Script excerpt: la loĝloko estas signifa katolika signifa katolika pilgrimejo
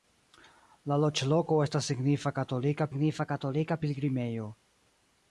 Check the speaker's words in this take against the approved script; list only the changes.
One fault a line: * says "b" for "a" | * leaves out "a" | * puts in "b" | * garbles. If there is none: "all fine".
all fine